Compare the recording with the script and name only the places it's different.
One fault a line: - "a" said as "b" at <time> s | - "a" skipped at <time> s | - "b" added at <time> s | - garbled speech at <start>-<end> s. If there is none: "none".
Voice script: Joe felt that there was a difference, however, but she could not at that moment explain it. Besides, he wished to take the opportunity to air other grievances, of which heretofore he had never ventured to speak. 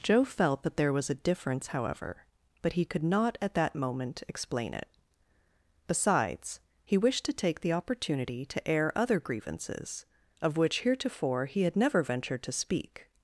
- "she" said as "he" at 2.7 s